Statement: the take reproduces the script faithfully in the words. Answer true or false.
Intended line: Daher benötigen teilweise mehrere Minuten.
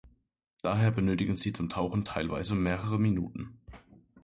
false